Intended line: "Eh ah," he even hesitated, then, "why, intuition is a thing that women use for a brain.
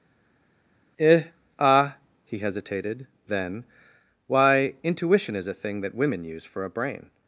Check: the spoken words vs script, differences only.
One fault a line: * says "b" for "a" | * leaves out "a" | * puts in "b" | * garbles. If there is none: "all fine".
* leaves out "even"